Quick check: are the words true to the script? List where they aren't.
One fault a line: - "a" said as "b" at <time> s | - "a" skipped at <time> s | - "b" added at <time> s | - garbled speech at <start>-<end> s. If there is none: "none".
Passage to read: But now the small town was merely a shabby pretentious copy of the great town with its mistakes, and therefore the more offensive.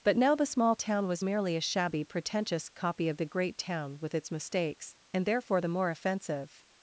none